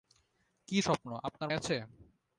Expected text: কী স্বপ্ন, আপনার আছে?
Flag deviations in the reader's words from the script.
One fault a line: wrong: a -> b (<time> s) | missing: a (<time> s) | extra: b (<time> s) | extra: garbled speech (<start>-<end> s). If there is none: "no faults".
no faults